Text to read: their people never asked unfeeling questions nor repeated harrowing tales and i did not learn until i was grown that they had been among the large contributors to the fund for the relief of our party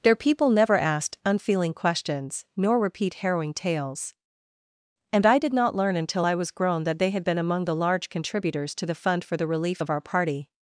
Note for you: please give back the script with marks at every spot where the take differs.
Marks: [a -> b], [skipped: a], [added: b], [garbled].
their people never asked unfeeling questions nor [repeated -> repeat] harrowing tales and i did not learn until i was grown that they had been among the large contributors to the fund for the relief of our party